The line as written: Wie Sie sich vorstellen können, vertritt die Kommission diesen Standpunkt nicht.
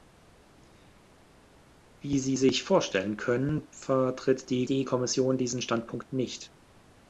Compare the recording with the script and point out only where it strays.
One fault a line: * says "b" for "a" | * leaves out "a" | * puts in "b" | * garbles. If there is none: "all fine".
* puts in "die"